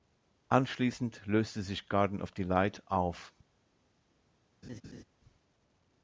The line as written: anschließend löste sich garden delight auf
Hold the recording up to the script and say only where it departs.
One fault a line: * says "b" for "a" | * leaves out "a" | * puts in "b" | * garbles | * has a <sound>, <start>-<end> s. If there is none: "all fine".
* puts in "of"
* has a laugh, 4.6-5.0 s